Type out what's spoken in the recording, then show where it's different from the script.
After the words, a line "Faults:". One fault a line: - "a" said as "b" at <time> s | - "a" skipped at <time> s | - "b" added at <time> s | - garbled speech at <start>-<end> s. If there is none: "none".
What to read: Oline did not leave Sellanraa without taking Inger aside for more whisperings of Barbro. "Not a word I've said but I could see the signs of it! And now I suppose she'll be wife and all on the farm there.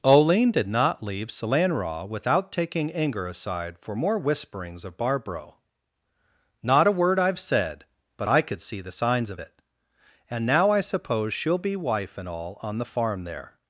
Oline did not leave Sellanraa without taking Inger aside for more whisperings of Barbro. "Not a word I've said but I could see the signs of it! And now I suppose she'll be wife and all on the farm there.
Faults:
none